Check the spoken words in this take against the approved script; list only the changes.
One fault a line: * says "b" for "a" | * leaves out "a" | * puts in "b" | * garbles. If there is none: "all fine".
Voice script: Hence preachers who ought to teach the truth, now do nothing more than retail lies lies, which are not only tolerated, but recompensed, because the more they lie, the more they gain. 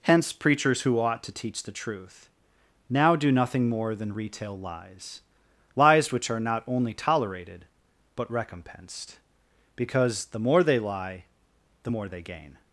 all fine